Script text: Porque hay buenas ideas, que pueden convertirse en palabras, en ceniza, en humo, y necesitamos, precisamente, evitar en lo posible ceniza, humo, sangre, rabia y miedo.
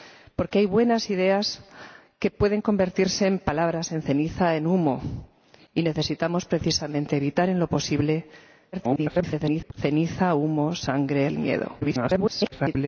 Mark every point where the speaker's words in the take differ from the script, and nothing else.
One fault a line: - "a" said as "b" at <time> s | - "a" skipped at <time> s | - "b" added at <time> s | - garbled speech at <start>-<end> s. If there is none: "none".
- garbled speech at 8.7-9.7 s
- "rabia" skipped at 11.3 s
- garbled speech at 11.8-12.9 s